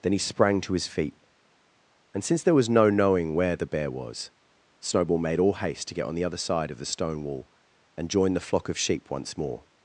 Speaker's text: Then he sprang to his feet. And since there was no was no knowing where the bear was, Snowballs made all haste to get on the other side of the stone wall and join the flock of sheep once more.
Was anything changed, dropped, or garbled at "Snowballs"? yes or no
yes